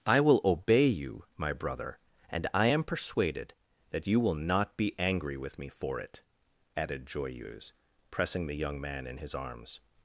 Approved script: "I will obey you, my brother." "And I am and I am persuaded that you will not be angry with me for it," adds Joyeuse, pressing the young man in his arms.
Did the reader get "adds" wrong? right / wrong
wrong